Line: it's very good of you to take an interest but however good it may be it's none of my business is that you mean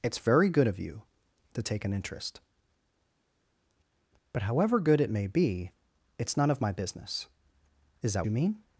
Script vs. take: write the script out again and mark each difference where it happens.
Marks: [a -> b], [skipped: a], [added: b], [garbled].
it's very good of you to take an interest but however good it may be it's none of my business is that you mean